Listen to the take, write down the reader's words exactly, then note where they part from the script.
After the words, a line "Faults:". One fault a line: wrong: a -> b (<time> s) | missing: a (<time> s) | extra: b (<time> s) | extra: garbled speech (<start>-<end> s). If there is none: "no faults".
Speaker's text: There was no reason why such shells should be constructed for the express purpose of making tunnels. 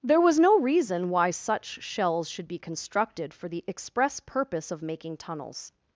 There was no reason why such shells should be constructed for the express purpose of making tunnels.
Faults:
no faults